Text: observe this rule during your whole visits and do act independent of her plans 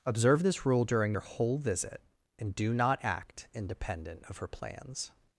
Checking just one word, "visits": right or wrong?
wrong